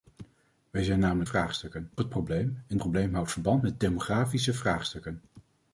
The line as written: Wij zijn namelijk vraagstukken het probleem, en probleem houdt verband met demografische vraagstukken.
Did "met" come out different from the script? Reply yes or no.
no